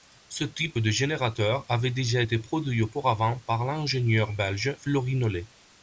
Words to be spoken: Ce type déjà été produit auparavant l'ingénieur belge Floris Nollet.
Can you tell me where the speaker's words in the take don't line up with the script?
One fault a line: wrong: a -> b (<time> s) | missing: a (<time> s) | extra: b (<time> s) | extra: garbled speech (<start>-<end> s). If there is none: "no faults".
extra: de générateur avait (0.8 s)
extra: par (3.4 s)